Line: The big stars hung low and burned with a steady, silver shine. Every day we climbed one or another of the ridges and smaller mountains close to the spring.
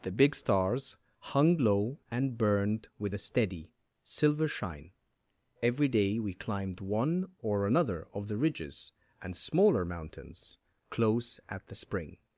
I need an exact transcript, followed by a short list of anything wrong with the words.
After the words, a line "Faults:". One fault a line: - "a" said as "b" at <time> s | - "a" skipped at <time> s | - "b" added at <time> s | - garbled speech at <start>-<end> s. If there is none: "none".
The big stars hung low and burned with a steady, silver shine. Every day we climbed one or another of the ridges and smaller mountains close at the spring.
Faults:
- "to" said as "at" at 11.5 s